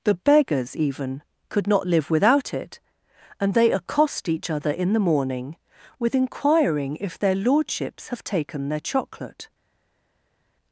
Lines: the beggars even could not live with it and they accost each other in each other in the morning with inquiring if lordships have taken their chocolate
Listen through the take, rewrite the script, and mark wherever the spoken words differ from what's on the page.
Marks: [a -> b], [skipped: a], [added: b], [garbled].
the beggars even could not live [with -> without] it and they accost each other in [skipped: each other in] the morning with inquiring if [added: their] lordships have taken their chocolate